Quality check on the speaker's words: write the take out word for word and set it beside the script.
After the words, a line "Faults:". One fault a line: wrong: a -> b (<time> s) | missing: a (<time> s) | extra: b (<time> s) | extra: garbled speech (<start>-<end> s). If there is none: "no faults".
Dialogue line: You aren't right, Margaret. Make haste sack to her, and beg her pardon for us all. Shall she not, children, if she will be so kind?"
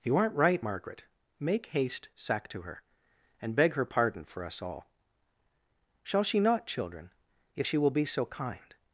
You aren't right, Margaret. Make haste sack to her, and beg her pardon for us all. Shall she not, children, if she will be so kind?"
Faults:
no faults